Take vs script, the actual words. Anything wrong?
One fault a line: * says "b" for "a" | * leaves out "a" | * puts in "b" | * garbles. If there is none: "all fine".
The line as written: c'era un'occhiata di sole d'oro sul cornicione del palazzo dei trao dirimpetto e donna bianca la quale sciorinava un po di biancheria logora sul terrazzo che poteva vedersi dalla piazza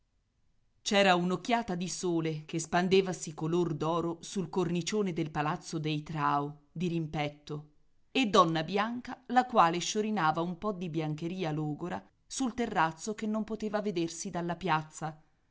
* puts in "che spandevasi color"
* puts in "non"